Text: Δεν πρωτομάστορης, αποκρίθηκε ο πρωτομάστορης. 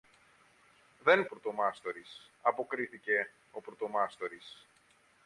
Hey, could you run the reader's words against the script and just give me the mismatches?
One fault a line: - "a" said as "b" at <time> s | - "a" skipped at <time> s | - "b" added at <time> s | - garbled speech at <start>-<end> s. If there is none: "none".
none